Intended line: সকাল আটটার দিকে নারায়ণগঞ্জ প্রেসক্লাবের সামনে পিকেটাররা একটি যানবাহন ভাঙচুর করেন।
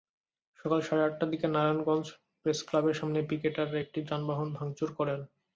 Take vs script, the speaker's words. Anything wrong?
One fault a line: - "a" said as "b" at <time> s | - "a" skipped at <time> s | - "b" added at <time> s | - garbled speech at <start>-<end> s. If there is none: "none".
- "সাড়ে" added at 0.8 s